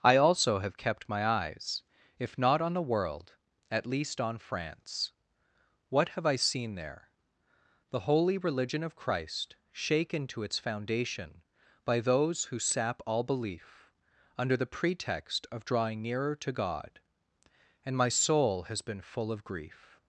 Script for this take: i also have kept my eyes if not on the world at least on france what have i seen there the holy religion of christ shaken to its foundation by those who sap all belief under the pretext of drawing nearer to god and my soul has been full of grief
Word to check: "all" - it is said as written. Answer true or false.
true